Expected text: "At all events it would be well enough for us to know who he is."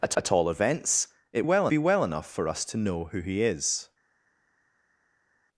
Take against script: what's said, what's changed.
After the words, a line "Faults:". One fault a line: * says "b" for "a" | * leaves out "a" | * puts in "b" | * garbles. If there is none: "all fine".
"At at all events it well be well enough for us to know who he is."
Faults:
* puts in "at"
* says "well" for "would"